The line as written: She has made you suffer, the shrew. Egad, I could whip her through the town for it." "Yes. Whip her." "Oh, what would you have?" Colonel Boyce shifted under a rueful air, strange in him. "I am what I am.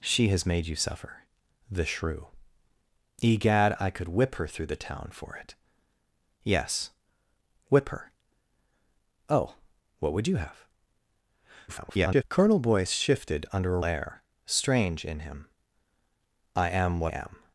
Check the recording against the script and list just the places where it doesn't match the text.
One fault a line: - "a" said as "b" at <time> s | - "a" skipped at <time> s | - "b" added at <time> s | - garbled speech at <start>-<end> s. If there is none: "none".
- garbled speech at 11.7-12.2 s
- "rueful" skipped at 13.8 s
- "I" skipped at 17.1 s